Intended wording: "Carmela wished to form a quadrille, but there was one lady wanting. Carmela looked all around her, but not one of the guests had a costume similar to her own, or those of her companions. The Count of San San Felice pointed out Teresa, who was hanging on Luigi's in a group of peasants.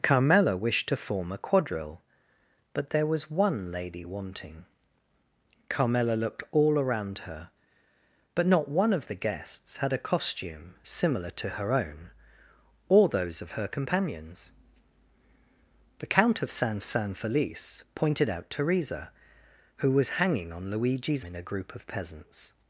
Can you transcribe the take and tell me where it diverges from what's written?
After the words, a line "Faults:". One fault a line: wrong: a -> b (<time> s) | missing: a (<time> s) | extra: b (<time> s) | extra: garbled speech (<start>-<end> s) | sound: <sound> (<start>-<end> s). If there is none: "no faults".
"Carmela wished to form a quadrille, but there was one lady wanting. Carmela looked all around her, but not one of the guests had a costume similar to her own, or those of her companions. The Count of San San Felice pointed out Teresa, who was hanging on Luigi's in a group of peasants.
Faults:
no faults